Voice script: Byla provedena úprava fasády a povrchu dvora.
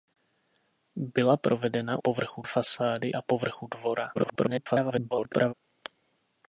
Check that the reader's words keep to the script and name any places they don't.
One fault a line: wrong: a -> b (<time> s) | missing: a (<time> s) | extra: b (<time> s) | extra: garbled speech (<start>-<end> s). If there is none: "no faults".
wrong: úprava -> povrchu (2.0 s)
extra: garbled speech (4.1-5.5 s)